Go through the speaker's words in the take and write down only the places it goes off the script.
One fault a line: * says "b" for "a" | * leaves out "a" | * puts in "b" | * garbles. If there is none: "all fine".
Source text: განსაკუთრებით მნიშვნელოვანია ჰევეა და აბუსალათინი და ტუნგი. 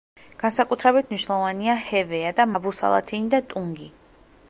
all fine